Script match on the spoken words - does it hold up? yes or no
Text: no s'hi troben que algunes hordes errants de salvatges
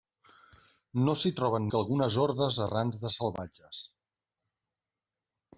yes